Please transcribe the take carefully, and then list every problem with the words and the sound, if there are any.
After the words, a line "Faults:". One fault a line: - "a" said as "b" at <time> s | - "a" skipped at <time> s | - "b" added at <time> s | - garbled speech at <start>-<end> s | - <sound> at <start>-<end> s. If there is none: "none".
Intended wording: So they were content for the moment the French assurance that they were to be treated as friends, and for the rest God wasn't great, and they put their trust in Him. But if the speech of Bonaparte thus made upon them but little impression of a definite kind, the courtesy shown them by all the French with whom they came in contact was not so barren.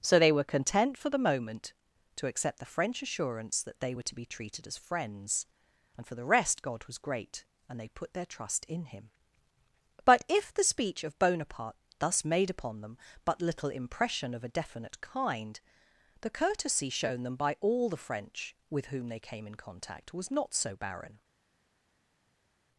So they were content for the moment to accept the French assurance that they were to be treated as friends, and for the rest God was great, and they put their trust in Him. But if the speech of Bonaparte thus made upon them but little impression of a definite kind, the courtesy shown them by all the French with whom they came in contact was not so barren.
Faults:
- "to accept" added at 2.1 s
- "wasn't" said as "was" at 6.9 s